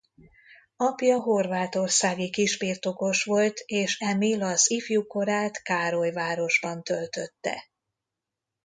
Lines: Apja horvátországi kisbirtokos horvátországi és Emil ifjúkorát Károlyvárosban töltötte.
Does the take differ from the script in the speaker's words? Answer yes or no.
yes